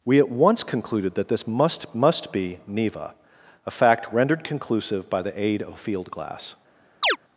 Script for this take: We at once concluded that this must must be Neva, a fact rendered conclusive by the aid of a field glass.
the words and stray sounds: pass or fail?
fail